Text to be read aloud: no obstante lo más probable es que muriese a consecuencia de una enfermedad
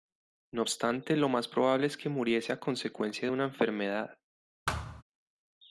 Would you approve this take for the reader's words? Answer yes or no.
yes